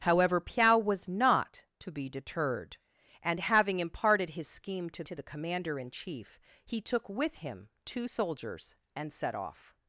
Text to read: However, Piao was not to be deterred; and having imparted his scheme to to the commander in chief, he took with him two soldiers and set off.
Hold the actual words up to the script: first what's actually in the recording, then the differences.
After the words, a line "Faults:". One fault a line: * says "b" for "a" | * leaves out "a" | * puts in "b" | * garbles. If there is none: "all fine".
However, Piao was not to be deterred; and having imparted his scheme to to the commander in chief, he took with him two soldiers and set off.
Faults:
all fine